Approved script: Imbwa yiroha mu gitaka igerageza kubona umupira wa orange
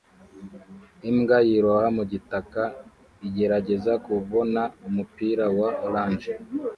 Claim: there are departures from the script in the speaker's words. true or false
false